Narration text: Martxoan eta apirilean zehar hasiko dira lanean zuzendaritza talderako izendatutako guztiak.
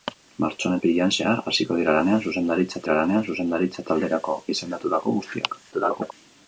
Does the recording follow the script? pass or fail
fail